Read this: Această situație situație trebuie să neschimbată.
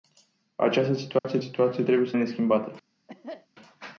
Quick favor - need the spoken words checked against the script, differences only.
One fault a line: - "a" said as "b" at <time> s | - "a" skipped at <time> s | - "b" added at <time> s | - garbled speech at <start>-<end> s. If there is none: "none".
none